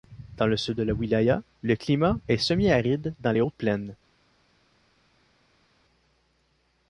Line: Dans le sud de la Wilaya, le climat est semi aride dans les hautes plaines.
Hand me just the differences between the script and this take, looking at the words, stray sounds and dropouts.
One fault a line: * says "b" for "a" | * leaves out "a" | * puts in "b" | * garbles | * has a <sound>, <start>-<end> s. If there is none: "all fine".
all fine